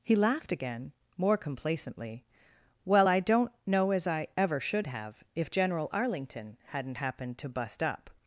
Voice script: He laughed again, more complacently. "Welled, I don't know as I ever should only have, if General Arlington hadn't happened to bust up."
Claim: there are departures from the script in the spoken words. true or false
true